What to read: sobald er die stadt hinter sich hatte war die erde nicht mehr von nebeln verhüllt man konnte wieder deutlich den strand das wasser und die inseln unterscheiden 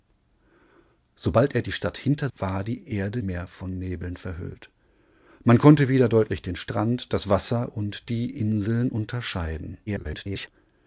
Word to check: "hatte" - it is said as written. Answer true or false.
false